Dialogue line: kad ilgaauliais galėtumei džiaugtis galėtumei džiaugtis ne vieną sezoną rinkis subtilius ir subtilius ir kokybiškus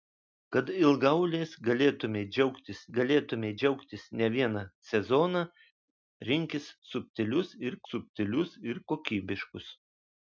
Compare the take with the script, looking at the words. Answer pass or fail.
pass